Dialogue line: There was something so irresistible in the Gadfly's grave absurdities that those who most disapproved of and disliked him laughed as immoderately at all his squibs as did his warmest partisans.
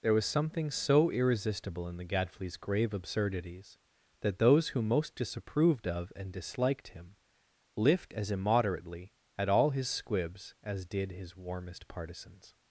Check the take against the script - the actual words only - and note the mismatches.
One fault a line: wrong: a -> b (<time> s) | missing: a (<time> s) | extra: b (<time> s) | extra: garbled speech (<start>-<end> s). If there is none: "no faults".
wrong: laughed -> lift (7.8 s)